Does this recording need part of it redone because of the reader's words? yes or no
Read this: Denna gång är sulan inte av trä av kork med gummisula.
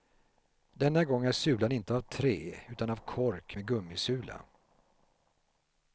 yes